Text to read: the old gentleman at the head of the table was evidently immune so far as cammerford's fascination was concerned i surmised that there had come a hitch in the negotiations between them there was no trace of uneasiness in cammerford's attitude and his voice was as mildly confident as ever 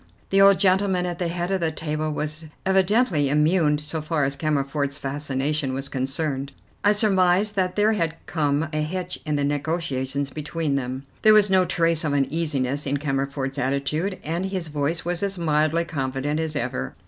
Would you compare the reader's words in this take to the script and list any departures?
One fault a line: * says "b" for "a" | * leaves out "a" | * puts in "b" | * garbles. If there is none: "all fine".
all fine